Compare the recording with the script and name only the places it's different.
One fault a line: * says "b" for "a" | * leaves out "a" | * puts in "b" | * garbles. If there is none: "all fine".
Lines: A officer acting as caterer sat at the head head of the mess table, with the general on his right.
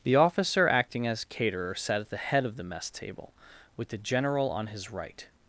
* says "The" for "A"
* leaves out "head"